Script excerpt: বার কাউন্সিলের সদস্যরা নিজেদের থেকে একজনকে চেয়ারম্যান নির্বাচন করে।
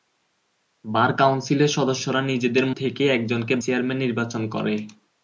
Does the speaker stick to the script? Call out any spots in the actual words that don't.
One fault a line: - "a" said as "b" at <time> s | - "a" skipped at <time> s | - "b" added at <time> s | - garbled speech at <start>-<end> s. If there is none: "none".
none